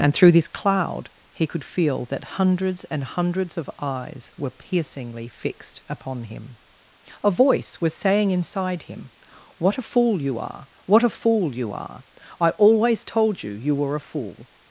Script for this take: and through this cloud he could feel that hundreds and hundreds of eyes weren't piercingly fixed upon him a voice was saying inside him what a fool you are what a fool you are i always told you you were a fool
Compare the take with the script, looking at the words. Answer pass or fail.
fail